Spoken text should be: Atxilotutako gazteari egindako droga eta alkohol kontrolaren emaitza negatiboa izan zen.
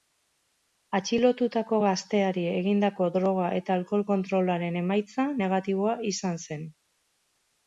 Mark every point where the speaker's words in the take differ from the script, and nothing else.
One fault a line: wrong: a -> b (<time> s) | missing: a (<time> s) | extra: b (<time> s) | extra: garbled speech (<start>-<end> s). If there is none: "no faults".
no faults